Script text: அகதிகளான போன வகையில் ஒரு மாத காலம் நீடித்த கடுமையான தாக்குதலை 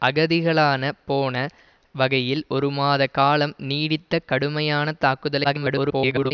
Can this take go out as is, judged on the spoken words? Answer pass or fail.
fail